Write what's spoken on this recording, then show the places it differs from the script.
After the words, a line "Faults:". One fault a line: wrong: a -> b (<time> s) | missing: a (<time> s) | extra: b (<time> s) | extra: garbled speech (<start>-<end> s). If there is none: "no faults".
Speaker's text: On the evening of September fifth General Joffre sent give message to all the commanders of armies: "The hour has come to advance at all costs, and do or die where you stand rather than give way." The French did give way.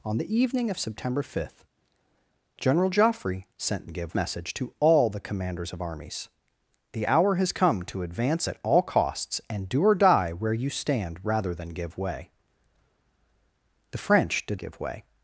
On the evening of September fifth General Joffre sent give message to all the commanders of armies: "The hour has come to advance at all costs, and do or die where you stand rather than give way." The French did give way.
Faults:
no faults